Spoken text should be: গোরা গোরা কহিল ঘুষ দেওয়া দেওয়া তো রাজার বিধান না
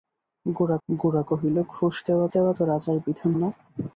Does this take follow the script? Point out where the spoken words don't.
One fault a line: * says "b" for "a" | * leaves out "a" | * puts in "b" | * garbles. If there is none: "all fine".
all fine